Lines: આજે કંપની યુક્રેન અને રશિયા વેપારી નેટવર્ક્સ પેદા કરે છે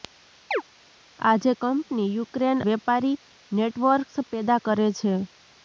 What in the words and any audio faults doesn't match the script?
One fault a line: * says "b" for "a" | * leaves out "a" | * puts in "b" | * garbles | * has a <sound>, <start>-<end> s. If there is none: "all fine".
* has a chirp, 0.5-0.6 s
* leaves out "અને રશિયા"